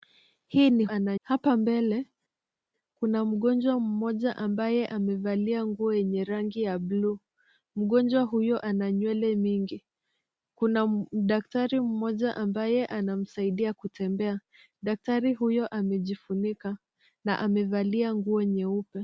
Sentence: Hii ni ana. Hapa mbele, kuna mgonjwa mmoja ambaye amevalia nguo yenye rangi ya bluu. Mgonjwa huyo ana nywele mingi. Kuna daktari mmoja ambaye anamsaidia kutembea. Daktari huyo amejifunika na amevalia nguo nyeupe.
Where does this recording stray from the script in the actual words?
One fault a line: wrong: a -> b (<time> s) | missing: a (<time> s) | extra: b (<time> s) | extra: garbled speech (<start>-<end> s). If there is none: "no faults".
no faults